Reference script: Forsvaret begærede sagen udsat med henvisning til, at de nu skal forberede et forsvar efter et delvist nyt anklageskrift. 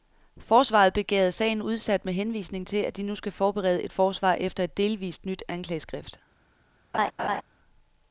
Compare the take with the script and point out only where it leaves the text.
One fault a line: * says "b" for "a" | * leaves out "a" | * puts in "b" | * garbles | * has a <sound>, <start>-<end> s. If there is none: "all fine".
* has a laugh, 6.9-7.4 s